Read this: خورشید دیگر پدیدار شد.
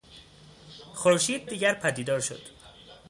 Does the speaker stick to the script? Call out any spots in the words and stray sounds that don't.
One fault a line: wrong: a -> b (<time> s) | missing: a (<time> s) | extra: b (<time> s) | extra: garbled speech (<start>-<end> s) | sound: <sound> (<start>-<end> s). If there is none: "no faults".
no faults